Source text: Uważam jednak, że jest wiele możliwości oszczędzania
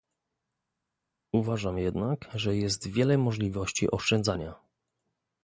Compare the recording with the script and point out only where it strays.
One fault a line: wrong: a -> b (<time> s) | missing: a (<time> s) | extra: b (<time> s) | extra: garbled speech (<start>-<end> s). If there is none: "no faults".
no faults